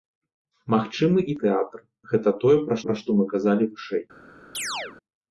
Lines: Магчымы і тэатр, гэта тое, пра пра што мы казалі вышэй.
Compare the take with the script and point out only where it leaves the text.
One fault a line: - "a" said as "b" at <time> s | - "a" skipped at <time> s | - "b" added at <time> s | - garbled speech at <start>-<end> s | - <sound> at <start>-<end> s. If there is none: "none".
- chirp at 4.5-5.0 s